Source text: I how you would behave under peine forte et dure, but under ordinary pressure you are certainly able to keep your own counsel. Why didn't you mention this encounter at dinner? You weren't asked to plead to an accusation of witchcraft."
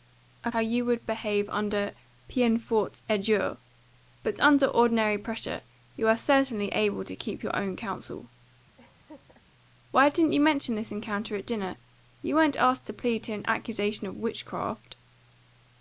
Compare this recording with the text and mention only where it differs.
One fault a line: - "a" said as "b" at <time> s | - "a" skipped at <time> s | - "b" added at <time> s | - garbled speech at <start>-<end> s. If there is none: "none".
none